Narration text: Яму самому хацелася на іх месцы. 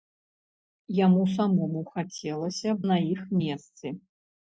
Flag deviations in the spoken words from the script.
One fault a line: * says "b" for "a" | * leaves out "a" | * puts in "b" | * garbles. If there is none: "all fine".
all fine